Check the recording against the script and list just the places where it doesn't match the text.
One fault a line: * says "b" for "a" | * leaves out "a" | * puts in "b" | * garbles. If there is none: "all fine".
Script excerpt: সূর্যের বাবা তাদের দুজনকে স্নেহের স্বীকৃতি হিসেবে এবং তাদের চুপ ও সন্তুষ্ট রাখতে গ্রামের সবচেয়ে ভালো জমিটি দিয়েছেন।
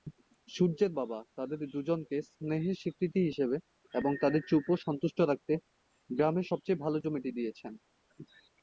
all fine